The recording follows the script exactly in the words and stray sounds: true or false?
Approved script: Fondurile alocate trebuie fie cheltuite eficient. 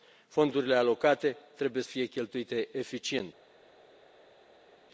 true